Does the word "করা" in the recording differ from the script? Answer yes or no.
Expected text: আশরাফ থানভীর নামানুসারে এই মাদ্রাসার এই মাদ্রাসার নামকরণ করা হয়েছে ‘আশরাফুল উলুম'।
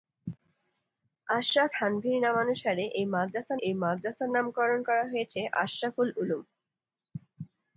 no